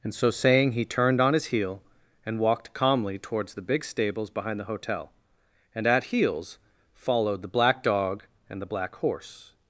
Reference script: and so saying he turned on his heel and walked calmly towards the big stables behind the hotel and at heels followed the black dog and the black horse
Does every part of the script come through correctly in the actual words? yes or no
yes